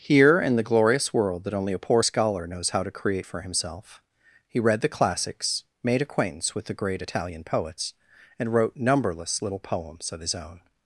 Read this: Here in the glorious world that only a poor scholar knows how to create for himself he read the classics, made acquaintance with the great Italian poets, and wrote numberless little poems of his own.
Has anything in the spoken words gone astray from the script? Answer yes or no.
no